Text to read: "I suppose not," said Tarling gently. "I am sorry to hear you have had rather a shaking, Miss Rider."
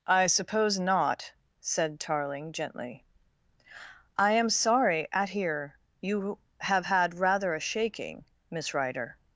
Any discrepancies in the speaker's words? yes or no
yes